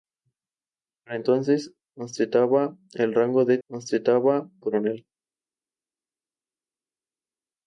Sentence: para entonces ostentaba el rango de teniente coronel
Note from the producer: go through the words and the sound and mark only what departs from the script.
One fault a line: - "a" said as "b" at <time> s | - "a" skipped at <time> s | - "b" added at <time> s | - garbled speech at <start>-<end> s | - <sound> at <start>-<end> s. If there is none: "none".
- "teniente" said as "ostentaba" at 3.7 s